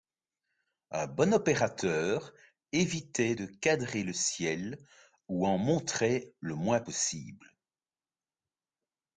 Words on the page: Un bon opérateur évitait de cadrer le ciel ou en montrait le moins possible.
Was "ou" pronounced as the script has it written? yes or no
yes